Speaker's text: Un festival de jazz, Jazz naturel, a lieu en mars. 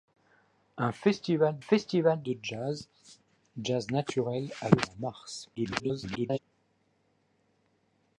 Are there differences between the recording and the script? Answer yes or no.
yes